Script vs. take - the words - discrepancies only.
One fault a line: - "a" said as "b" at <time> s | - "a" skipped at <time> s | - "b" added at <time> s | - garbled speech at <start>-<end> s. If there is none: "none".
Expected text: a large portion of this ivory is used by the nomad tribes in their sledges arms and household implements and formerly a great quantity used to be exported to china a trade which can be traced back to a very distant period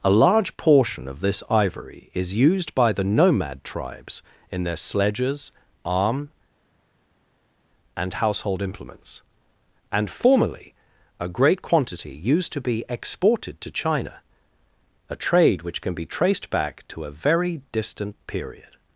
- "arms" said as "arm" at 5.8 s